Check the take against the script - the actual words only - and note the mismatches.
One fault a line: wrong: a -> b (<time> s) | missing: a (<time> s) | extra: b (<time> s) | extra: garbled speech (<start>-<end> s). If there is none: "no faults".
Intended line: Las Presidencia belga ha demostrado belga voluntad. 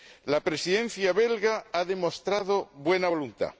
wrong: Las -> La (0.2 s)
wrong: belga -> buena (2.7 s)